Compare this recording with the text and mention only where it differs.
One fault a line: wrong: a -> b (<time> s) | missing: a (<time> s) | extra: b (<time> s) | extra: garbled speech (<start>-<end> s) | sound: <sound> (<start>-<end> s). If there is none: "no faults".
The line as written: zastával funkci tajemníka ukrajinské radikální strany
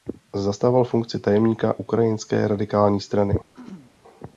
sound: throat clearing (3.5-3.9 s)